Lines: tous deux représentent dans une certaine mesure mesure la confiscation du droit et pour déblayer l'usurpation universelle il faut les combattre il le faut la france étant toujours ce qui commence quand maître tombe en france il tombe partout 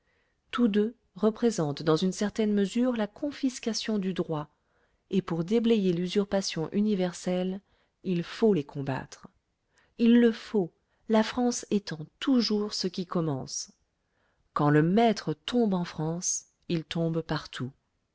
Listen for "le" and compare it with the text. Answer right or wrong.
right